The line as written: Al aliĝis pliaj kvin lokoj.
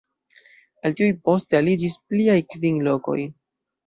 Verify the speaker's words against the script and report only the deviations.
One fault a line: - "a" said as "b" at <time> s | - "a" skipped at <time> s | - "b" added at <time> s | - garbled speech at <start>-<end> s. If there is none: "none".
- "tiuj poste" added at 1.0 s